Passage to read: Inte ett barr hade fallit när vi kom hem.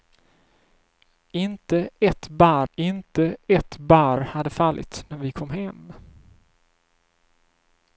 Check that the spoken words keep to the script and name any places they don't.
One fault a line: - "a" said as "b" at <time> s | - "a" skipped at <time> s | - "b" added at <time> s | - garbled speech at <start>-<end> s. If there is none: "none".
- "inte ett barr" added at 2.7 s